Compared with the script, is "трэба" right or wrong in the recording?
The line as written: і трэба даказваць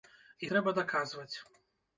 right